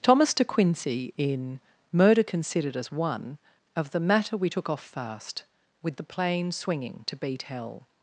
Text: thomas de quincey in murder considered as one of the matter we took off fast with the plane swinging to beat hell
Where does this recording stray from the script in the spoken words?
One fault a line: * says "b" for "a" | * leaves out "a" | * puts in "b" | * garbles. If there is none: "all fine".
all fine